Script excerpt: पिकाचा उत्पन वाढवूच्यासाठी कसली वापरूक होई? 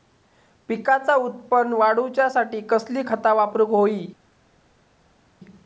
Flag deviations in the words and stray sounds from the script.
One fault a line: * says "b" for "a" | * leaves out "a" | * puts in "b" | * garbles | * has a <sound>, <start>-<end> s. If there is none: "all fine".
* puts in "खता"